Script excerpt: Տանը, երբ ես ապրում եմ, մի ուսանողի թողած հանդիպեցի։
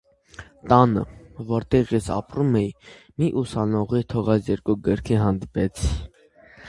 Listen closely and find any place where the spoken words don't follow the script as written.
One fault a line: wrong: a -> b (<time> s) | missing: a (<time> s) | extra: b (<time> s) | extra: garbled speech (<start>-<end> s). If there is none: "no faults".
wrong: երբ -> որտեղ (1.5 s)
wrong: եմ -> էի (2.6 s)
extra: երկու գրքի (4.5 s)